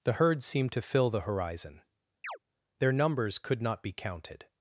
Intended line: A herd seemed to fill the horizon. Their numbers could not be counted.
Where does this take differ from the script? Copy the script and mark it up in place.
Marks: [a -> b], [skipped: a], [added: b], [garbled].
[A -> The] herd seemed to fill the horizon. Their numbers could not be counted.